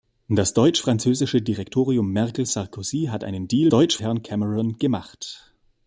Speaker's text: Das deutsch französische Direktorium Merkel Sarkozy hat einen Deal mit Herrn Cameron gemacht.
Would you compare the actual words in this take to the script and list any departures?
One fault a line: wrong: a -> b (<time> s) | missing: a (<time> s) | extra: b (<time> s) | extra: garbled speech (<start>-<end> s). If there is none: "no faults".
wrong: mit -> deutsch (3.7 s)